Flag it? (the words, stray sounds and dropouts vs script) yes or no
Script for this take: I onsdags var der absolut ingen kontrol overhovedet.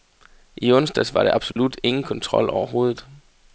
yes